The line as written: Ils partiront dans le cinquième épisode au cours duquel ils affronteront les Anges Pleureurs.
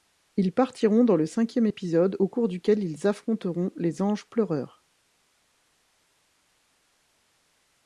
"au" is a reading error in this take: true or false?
false